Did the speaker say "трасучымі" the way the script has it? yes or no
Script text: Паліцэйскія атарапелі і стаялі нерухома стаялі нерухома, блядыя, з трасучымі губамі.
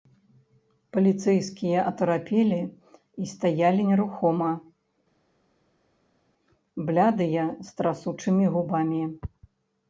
yes